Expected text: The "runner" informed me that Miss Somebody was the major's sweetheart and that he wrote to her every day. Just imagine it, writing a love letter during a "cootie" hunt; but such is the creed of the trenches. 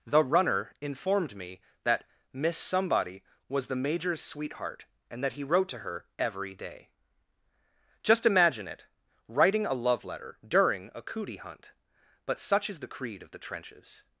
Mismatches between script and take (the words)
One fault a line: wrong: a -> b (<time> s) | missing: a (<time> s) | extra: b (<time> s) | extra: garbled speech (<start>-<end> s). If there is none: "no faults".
no faults